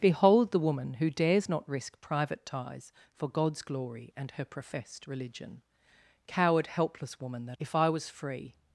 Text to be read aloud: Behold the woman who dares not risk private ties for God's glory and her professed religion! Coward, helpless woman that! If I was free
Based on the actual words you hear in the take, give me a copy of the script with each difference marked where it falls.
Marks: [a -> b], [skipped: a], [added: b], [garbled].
Behold the woman who dares not risk private ties for God's glory and her professed religion! Coward, helpless woman that! If I was free